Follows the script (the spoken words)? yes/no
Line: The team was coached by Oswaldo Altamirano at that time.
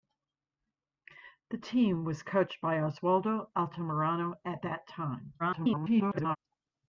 no